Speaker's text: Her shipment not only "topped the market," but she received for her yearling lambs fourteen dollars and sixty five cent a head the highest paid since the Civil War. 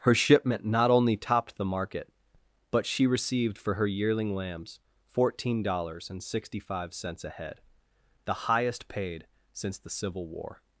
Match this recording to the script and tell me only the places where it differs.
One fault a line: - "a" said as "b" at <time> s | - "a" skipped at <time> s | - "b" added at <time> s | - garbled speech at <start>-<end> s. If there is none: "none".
- "cent" said as "cents" at 7.0 s